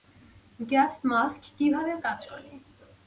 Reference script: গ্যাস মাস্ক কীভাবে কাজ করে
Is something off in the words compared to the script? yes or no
no